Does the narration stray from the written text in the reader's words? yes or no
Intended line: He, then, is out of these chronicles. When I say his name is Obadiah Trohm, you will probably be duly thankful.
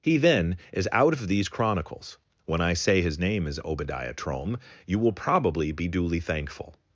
no